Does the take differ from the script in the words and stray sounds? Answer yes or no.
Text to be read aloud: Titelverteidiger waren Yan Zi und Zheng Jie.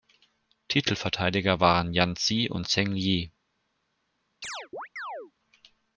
yes